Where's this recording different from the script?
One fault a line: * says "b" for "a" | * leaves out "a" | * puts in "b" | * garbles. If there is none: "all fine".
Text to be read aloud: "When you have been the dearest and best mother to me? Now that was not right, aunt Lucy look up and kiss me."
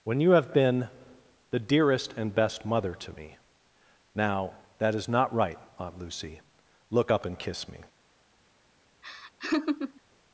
* says "is" for "was"